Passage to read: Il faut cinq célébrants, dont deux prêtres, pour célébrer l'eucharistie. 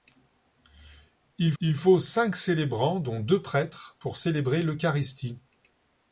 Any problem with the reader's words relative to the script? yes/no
yes